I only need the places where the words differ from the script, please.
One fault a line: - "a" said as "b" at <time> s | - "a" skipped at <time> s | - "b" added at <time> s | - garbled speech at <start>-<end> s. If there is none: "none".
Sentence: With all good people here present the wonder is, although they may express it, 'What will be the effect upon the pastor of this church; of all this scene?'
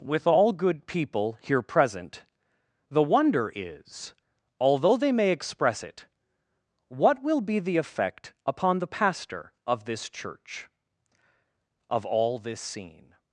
none